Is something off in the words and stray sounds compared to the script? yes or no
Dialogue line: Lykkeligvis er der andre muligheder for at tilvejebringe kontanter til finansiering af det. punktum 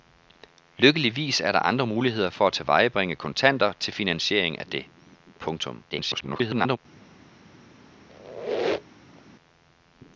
yes